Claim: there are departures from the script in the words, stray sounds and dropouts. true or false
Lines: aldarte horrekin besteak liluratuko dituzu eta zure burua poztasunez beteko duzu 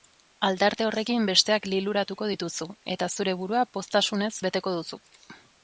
false